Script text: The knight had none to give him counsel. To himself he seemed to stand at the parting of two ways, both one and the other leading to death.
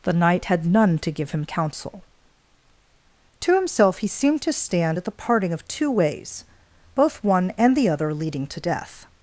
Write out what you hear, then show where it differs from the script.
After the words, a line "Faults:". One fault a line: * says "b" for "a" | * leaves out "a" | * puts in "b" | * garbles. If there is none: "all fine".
The knight had none to give him counsel. To himself he seemed to stand at the parting of two ways, both one and the other leading to death.
Faults:
all fine